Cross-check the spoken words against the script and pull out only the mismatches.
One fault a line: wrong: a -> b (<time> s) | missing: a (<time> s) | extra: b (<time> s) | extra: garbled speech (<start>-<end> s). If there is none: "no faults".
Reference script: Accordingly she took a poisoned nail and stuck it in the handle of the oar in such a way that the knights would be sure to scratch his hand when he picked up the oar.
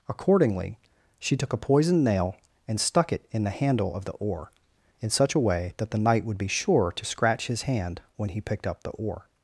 wrong: knights -> knight (6.0 s)